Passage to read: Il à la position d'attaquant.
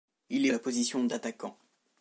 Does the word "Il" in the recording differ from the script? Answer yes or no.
no